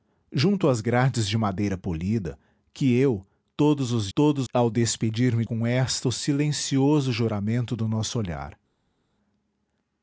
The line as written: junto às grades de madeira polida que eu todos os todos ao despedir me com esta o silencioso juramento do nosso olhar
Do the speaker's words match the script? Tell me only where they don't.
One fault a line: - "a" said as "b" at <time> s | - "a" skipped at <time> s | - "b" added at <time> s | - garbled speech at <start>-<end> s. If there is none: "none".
none